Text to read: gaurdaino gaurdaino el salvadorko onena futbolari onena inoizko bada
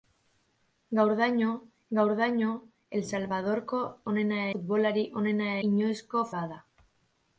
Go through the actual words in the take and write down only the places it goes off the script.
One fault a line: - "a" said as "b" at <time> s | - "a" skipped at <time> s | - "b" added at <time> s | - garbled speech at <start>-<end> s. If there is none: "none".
none